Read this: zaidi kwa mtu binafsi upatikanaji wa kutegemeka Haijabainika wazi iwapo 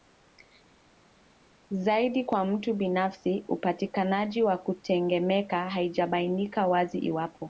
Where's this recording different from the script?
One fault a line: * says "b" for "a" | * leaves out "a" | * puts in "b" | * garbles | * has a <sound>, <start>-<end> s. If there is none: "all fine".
all fine